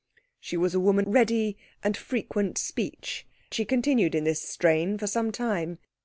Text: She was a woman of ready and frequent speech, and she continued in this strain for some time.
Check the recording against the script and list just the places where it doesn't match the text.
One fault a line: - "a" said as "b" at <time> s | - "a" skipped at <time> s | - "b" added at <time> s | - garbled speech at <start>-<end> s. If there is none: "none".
- "of" skipped at 1.1 s
- "and" skipped at 3.3 s